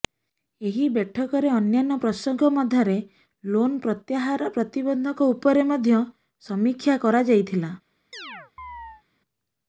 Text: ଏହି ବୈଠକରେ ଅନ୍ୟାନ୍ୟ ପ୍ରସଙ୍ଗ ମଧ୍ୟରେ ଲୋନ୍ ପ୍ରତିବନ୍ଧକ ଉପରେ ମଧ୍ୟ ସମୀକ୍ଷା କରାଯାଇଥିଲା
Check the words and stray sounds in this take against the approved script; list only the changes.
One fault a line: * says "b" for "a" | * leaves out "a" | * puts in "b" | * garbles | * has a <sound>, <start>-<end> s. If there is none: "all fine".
* puts in "ପ୍ରତ୍ୟାହାର"
* has a chirp, 8.1-9.0 s